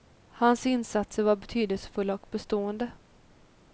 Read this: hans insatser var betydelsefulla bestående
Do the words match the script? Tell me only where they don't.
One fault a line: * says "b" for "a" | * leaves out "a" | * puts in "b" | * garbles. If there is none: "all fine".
* puts in "och"